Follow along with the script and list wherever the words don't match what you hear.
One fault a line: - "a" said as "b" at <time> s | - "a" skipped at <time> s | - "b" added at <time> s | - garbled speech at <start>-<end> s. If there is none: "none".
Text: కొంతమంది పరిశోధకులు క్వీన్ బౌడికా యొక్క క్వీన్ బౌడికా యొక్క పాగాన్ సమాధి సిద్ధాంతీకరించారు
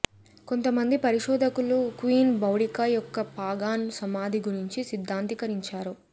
- "క్వీన్ బౌడికా యొక్క" skipped at 3.3 s
- "గురించి" added at 4.5 s